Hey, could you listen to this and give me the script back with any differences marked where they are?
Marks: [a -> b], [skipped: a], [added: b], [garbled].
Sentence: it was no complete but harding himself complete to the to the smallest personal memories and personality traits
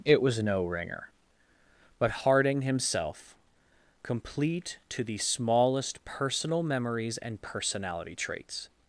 it was no [complete -> ringer] but harding himself complete to the [skipped: to the] smallest personal memories and personality traits